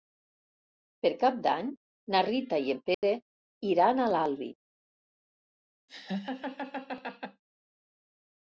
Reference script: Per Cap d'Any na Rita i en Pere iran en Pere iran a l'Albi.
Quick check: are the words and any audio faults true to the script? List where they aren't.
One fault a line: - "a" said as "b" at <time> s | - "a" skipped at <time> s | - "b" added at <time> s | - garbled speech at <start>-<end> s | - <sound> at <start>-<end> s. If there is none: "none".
- dropout at 2.9-3.0 s
- "en Pere iran" skipped at 4.0 s
- laugh at 5.9-7.4 s